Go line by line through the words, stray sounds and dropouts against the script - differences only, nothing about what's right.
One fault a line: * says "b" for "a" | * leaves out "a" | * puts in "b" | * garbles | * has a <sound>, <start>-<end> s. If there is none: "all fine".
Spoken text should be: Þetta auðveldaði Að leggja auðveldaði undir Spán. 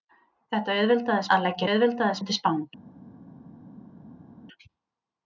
all fine